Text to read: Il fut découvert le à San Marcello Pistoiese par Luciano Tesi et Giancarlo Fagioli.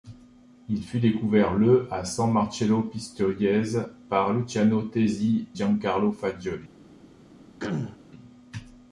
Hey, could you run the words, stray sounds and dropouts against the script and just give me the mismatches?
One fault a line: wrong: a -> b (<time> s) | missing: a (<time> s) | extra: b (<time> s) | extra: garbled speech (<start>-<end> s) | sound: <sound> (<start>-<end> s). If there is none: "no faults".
missing: et (5.5 s)
sound: throat clearing (7.6-8.0 s)